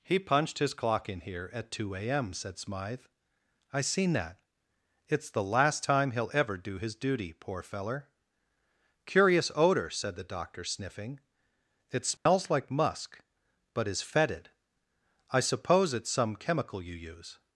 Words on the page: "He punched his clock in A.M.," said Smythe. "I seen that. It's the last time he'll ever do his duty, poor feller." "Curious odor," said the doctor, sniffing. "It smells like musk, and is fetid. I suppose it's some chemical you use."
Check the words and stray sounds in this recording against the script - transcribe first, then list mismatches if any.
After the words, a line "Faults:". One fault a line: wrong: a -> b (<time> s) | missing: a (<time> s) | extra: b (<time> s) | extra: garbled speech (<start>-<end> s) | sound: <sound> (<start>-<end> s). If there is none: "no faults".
"He punched his clock in here at two A.M.," said Smythe. "I seen that. It's the last time he'll ever do his duty, poor feller." "Curious odor," said the doctor, sniffing. "It smells like musk, but is fetid. I suppose it's some chemical you use."
Faults:
extra: here at two (1.2 s)
sound: dropout (12.2-12.3 s)
wrong: and -> but (13.8 s)